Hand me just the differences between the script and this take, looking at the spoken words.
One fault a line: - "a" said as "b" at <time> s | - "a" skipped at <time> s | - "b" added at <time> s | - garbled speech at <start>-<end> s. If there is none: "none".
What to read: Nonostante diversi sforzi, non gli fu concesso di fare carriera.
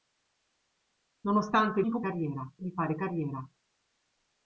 - "diversi sforzi non" skipped at 1.8 s
- "concesso" said as "carriera" at 2.0 s